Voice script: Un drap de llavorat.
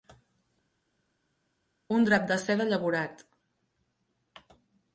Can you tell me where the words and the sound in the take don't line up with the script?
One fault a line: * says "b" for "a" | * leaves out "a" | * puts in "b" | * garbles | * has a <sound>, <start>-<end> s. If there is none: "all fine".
* puts in "seda"